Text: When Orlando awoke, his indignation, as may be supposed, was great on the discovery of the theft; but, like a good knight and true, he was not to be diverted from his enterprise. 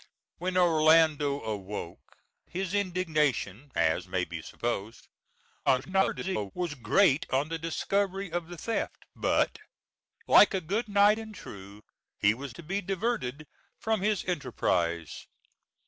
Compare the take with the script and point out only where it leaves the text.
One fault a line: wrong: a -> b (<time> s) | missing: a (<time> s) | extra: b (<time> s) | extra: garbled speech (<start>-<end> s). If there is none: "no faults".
extra: garbled speech (5.7-6.5 s)
missing: not (12.5 s)